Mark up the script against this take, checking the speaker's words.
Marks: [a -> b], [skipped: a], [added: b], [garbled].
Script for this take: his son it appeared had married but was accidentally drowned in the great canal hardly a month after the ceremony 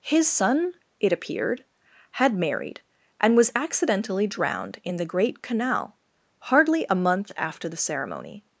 his son it appeared had married [but -> and] was accidentally drowned in the great canal hardly a month after the ceremony